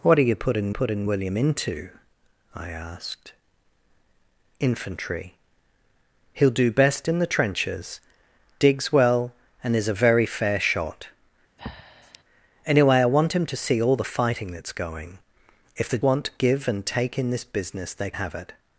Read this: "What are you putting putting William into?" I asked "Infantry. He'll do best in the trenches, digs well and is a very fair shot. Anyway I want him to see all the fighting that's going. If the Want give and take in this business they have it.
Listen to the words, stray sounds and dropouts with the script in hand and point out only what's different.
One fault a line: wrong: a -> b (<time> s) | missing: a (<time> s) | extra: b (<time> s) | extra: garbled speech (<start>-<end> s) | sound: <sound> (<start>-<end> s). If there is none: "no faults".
sound: breath (11.6-12.2 s)